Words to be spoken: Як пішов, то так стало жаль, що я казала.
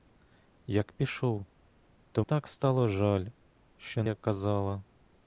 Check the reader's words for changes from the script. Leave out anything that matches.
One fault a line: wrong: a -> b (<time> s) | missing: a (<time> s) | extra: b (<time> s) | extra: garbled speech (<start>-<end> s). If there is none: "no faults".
no faults